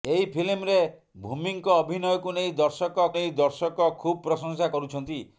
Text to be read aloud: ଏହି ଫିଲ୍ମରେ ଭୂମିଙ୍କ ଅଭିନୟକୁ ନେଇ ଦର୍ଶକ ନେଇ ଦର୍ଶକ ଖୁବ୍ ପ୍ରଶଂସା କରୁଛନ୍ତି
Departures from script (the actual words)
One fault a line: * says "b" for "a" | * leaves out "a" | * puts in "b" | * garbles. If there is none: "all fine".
all fine